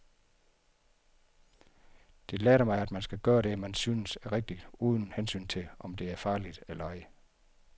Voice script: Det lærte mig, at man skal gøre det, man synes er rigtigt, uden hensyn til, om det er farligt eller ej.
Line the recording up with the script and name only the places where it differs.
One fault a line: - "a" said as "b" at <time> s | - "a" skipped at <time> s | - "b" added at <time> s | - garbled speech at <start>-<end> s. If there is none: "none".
none